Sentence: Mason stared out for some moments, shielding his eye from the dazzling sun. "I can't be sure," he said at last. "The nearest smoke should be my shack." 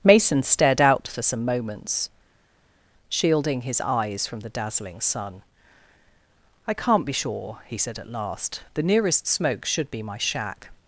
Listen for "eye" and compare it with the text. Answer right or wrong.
wrong